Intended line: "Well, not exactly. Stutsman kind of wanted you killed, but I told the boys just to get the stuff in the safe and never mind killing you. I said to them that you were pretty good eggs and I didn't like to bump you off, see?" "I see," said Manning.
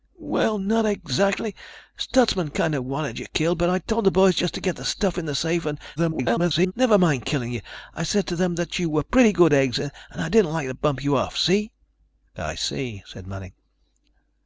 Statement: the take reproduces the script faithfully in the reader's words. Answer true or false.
false